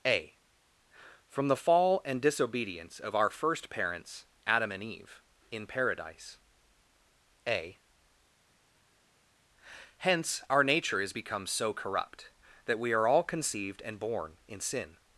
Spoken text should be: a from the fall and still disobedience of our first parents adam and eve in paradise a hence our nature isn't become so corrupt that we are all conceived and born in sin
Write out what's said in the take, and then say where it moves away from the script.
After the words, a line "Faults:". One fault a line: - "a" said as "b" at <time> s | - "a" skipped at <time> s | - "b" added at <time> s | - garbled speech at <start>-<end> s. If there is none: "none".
a from the fall and disobedience of our first parents adam and eve in paradise a hence our nature is become so corrupt that we are all conceived and born in sin
Faults:
- "still" skipped at 2.2 s
- "isn't" said as "is" at 11.0 s